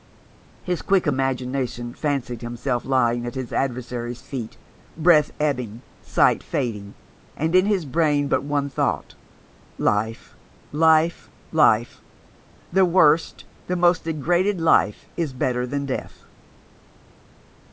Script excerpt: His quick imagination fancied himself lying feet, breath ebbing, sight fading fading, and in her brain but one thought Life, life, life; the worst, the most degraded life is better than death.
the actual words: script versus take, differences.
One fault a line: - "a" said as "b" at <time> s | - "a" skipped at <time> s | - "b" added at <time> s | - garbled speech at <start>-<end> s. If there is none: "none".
- "at his adversary's" added at 3.3 s
- "fading" skipped at 7.0 s
- "her" said as "his" at 7.7 s